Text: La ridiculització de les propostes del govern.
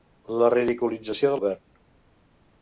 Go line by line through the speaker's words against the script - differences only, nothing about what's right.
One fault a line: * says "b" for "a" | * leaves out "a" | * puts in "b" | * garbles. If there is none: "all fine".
* leaves out "les propostes del"